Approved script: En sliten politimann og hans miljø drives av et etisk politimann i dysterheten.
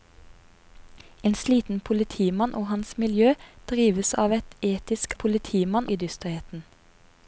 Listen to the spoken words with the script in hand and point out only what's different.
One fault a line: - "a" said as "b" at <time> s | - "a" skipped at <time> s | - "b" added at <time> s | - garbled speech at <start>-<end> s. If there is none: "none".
none